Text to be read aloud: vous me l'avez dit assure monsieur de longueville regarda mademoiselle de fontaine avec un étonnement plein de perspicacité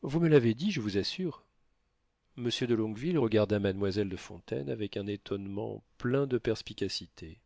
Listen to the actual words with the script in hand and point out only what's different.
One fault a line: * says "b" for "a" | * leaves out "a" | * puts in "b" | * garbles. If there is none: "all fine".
* puts in "je vous"